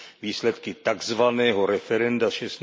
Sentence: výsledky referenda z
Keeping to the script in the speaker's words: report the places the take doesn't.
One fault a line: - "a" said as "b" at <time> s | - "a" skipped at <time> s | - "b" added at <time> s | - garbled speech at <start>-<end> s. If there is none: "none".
- "takzvaného" added at 0.7 s